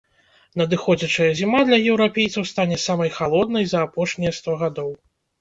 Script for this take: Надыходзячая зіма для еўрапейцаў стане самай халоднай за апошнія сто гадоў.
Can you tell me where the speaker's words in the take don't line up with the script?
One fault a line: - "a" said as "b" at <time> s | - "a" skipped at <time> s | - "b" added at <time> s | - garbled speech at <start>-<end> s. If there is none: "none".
none